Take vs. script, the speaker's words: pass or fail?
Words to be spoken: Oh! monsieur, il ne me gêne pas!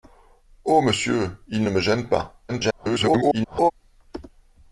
fail